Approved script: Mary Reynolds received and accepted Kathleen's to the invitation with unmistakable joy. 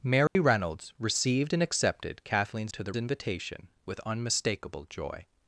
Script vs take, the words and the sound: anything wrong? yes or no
yes